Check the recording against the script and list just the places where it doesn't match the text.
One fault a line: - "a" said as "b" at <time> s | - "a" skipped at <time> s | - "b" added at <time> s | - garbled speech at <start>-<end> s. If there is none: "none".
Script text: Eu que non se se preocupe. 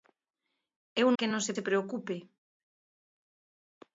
none